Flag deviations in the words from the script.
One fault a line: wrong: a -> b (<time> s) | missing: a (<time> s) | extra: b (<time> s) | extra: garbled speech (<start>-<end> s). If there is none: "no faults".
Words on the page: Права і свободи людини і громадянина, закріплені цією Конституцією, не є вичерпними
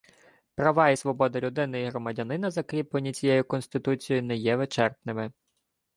no faults